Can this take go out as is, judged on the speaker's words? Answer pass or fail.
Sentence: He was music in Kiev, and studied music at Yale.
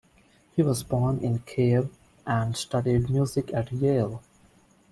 fail